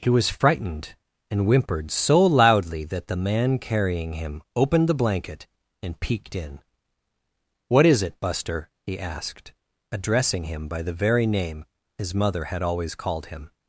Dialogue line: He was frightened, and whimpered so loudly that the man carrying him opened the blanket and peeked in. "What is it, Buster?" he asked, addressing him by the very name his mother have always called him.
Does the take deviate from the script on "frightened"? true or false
false